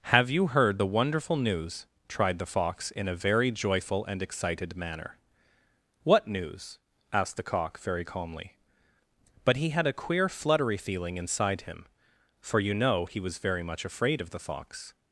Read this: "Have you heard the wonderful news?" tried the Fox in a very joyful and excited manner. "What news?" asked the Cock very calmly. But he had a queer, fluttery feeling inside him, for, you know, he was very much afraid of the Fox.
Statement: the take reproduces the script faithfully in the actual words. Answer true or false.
true